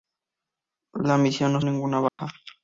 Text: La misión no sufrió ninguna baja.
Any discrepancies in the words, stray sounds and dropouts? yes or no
yes